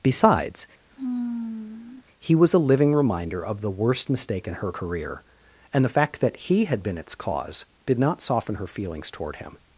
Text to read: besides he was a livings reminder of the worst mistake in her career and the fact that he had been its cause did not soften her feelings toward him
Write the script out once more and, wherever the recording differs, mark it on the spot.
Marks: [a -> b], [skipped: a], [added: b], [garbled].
besides he was a [livings -> living] reminder of the worst mistake in her career and the fact that he had been its cause did not soften her feelings toward him